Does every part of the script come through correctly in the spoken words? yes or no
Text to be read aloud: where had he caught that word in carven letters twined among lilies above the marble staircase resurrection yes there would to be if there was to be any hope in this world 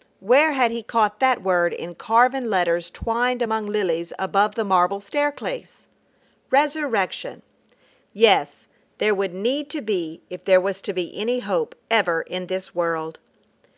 no